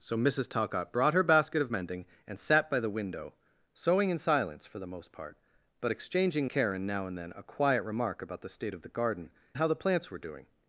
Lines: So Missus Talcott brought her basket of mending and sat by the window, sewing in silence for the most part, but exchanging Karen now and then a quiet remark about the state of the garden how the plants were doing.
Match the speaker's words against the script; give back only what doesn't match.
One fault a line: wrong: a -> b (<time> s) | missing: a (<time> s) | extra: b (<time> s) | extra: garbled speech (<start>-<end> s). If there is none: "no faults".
no faults